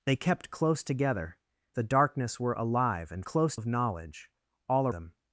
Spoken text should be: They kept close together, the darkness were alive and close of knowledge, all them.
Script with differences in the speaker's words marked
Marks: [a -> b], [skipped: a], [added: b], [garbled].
They kept close together, the darkness were alive and close of knowledge, all them.